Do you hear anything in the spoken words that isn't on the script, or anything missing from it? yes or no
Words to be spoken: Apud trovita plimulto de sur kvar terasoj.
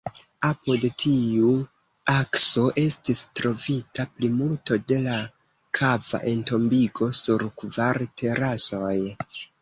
yes